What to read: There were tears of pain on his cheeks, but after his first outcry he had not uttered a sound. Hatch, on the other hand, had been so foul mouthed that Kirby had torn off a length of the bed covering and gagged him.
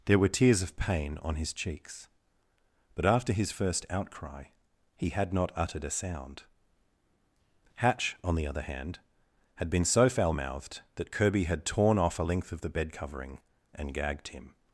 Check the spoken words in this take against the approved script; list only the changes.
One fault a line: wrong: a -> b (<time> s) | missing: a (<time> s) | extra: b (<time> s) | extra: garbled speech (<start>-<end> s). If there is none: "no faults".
no faults